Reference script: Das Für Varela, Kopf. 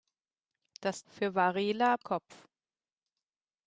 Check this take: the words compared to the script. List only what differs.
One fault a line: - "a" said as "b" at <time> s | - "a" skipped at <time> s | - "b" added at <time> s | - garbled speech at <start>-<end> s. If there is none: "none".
none